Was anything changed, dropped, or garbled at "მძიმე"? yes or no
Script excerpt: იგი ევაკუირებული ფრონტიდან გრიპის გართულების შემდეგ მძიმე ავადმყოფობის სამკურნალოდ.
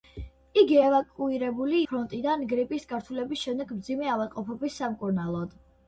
no